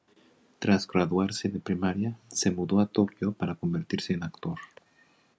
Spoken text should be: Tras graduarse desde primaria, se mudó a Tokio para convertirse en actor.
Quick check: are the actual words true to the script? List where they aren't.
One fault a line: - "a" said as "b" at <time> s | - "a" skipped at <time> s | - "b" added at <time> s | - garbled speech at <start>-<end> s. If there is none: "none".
- "desde" said as "de" at 1.5 s